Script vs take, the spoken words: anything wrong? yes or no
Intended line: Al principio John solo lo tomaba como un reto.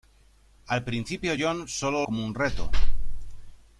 yes